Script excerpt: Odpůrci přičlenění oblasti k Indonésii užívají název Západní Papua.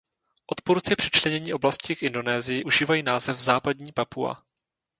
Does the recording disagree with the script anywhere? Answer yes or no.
no